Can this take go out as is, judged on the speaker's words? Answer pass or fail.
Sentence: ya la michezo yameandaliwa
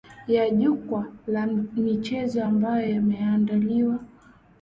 fail